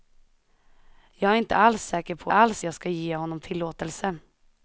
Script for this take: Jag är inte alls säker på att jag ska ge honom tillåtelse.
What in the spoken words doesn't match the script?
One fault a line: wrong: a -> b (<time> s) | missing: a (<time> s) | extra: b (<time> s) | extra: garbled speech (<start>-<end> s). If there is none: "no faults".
wrong: att -> alls (2.3 s)